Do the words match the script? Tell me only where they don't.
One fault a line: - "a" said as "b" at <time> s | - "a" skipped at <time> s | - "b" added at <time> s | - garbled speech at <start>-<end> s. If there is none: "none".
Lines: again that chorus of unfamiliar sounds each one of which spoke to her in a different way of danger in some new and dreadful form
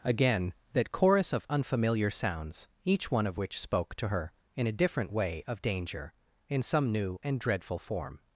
none